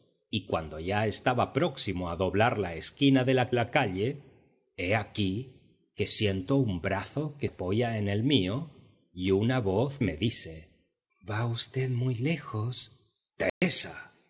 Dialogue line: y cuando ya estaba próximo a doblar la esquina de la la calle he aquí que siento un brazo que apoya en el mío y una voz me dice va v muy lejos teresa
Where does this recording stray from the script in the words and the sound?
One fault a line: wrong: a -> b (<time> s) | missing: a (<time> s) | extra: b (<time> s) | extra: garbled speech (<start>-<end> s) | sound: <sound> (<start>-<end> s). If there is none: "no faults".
sound: dropout (13.5-13.6 s)